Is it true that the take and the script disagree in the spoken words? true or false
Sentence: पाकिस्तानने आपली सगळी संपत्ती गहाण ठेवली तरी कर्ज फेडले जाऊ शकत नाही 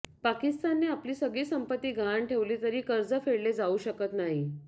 false